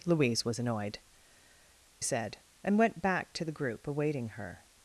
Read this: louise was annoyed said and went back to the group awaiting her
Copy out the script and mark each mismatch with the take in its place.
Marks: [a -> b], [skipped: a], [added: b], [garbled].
louise was annoyed said and went back to the group awaiting her